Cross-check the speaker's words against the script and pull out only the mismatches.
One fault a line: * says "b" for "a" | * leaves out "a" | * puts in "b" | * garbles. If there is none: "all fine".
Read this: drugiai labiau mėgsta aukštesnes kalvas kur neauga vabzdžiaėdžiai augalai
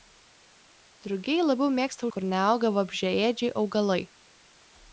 * leaves out "aukštesnes kalvas"